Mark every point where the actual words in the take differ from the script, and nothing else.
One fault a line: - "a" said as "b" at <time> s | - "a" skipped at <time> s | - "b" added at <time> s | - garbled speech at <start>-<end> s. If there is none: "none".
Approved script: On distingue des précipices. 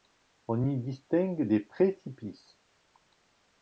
- "y" added at 0.6 s